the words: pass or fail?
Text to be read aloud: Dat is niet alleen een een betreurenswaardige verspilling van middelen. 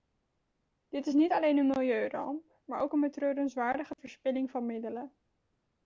fail